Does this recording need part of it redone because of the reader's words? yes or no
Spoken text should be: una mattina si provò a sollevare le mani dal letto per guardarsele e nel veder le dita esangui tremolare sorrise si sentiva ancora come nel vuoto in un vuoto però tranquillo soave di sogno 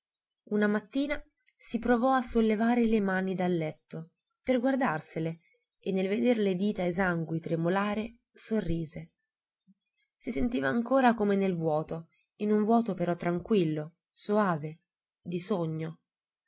no